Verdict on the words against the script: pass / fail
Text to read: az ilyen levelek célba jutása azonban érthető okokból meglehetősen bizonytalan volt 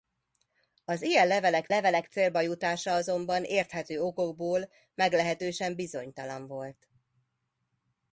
fail